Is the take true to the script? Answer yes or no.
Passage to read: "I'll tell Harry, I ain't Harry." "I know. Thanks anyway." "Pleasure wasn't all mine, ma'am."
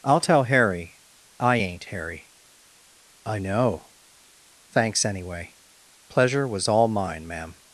no